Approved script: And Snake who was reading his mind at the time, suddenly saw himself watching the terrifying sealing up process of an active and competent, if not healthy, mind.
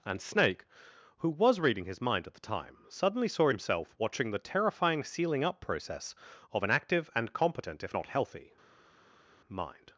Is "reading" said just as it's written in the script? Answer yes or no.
yes